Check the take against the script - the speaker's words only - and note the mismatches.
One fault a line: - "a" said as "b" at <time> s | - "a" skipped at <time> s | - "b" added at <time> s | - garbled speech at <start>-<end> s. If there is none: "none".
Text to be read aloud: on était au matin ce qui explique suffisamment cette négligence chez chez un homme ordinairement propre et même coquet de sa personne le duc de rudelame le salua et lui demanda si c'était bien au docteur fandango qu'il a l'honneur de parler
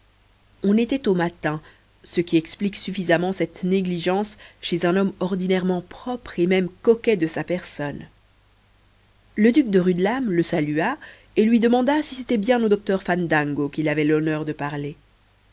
- "chez" skipped at 4.8 s
- "a" said as "avait" at 13.9 s